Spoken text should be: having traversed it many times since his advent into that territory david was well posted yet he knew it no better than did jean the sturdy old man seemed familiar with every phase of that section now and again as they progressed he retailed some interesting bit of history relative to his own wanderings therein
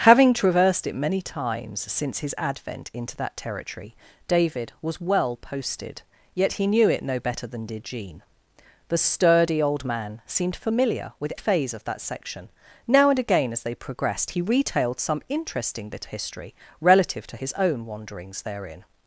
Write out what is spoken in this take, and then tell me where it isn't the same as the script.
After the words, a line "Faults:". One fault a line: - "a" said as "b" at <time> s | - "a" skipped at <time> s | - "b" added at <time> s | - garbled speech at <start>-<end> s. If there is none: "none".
having traversed it many times since his advent into that territory david was well posted yet he knew it no better than did jean the sturdy old man seemed familiar with phase of that section now and again as they progressed he retailed some interesting bit history relative to his own wanderings therein
Faults:
- "every" skipped at 11.3 s
- "of" skipped at 16.0 s